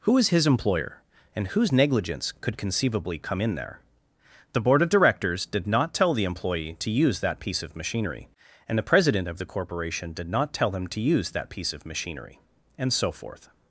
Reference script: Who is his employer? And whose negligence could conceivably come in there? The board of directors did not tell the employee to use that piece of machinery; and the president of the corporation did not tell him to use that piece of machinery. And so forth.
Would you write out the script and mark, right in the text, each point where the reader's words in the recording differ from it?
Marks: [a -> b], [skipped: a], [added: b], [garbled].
Who is his employer? And whose negligence could conceivably come in there? The board of directors did not tell the employee to use that piece of machinery; and the president of the corporation did not tell him to use that piece of machinery. And so forth.